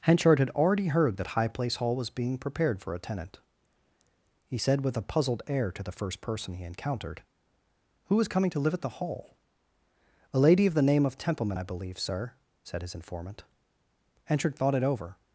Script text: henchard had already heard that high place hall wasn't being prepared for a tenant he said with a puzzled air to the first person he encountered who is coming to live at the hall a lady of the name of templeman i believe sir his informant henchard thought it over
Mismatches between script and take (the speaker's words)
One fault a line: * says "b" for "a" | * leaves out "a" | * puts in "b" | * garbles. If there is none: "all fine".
* says "was" for "wasn't"
* puts in "said"